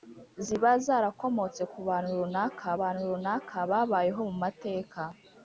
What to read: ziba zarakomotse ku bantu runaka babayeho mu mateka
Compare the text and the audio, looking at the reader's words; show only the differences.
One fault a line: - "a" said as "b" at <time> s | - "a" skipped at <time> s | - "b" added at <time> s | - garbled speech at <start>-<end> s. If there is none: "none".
- "bantu runaka" added at 2.8 s